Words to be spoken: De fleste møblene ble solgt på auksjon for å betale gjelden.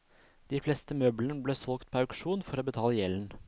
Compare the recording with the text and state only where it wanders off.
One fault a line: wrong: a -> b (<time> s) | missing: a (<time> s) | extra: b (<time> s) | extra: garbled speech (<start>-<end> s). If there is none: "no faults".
no faults